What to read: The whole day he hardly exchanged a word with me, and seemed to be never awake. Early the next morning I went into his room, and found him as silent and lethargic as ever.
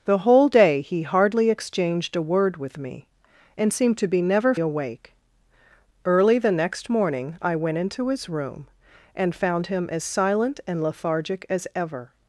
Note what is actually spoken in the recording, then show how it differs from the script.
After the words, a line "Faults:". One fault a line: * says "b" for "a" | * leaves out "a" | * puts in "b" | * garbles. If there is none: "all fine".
The whole day he hardly exchanged a word with me, and seemed to be never awake. Early the next morning I went into his room, and found him as silent and lethargic as ever.
Faults:
all fine